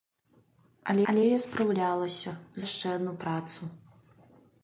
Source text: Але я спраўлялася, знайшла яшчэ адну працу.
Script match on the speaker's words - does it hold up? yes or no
no